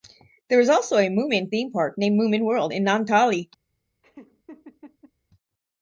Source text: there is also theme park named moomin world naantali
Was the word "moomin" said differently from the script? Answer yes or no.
no